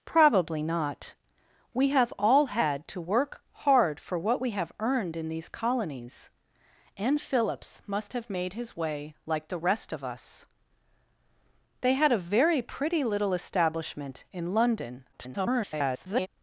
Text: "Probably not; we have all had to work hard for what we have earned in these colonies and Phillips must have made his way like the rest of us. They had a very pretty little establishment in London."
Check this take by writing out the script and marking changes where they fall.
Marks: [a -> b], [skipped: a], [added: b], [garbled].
"Probably not; we have all had to work hard for what we have earned in these colonies and Phillips must have made his way like the rest of us. They had a very pretty little establishment in London." [garbled]